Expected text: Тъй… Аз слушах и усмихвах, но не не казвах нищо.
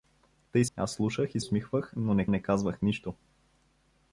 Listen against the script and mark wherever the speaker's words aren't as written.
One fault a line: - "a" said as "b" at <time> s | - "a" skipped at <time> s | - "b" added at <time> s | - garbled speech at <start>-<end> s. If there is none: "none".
none